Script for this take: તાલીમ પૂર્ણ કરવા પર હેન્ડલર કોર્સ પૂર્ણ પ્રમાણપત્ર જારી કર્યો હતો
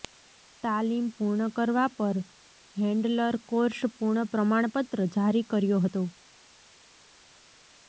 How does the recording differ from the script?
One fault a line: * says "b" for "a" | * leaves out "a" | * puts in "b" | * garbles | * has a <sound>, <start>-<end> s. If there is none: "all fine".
all fine